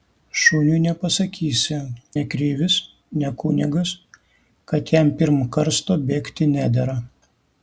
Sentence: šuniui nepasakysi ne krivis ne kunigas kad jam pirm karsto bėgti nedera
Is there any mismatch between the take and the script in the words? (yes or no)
no